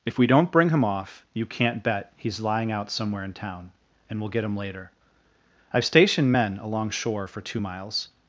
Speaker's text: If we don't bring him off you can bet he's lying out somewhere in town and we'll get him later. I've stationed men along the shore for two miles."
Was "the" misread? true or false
true